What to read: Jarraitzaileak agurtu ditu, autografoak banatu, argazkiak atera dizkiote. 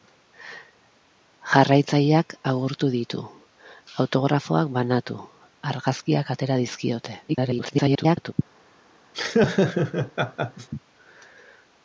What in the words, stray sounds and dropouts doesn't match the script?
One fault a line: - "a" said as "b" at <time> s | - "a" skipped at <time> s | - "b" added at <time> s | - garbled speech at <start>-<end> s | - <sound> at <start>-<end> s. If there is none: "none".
- garbled speech at 7.3-8.3 s
- laugh at 9.1-10.7 s